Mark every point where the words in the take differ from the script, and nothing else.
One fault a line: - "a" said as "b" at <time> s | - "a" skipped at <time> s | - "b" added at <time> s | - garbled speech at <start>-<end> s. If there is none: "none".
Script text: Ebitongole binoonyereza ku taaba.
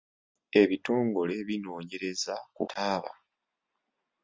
none